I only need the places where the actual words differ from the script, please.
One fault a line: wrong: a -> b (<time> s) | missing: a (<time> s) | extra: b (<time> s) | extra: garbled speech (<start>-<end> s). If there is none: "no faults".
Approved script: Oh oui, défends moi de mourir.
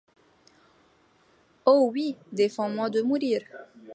no faults